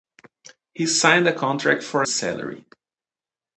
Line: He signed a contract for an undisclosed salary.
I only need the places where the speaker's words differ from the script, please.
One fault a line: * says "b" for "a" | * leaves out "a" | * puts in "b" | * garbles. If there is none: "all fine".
* leaves out "an undisclosed"